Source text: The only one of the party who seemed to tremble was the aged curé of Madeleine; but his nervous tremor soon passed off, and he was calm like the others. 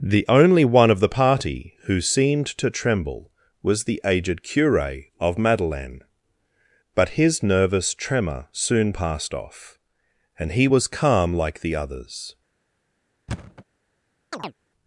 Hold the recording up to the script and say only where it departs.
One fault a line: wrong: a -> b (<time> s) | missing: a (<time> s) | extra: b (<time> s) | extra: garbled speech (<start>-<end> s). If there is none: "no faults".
no faults